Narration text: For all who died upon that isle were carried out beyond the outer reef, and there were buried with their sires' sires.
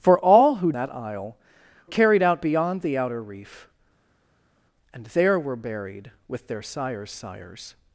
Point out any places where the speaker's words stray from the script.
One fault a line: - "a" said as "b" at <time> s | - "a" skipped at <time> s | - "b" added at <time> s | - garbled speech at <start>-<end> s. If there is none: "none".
- "died upon" skipped at 0.7 s
- "were" skipped at 1.4 s